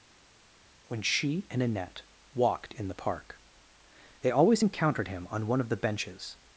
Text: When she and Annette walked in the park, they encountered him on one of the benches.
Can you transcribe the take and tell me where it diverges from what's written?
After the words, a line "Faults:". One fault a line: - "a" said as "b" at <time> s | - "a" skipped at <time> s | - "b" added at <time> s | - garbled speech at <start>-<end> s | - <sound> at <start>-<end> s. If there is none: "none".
When she and Annette walked in the park, they always encountered him on one of the benches.
Faults:
- "always" added at 4.3 s